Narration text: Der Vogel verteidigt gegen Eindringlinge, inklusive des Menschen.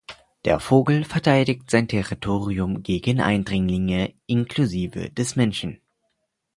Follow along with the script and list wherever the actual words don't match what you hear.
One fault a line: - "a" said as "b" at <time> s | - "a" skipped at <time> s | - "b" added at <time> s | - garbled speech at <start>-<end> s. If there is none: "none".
- "sein Territorium" added at 1.7 s